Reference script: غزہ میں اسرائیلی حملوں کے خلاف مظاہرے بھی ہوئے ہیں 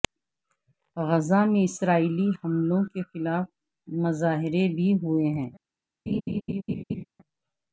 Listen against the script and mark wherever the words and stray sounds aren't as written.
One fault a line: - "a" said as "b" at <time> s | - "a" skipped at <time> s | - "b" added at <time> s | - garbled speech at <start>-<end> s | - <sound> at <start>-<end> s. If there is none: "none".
- laugh at 6.1-7.0 s